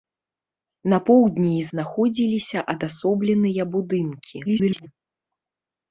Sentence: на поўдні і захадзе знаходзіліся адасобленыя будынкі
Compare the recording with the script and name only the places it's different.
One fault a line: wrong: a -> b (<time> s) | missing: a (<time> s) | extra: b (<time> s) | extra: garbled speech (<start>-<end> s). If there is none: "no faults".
missing: захадзе (1.7 s)
extra: garbled speech (4.4-4.9 s)